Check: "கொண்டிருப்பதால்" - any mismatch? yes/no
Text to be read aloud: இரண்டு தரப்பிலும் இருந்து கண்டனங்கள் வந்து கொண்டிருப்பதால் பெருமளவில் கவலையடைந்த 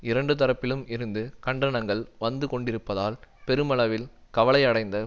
no